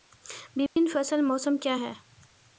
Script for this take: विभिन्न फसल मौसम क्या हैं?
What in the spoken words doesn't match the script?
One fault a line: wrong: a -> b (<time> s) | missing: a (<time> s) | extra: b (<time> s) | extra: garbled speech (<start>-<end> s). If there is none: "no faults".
no faults